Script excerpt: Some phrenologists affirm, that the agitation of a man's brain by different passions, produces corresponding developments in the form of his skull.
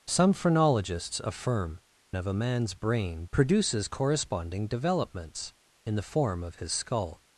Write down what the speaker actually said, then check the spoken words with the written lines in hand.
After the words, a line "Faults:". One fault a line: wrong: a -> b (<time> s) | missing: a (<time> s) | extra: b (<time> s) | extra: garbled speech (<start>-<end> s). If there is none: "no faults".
Some phrenologists affirm, of a man's brain produces corresponding developments in the form of his skull.
Faults:
missing: that the agitation (1.8 s)
missing: by different passions (3.2 s)